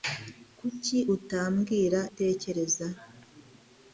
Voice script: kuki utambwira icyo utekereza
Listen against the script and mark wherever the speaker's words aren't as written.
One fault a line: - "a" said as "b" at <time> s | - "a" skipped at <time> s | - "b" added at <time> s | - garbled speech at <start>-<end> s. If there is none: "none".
- "icyo" skipped at 2.0 s